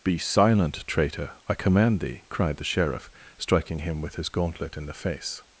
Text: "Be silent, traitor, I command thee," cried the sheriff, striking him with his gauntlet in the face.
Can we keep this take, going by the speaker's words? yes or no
yes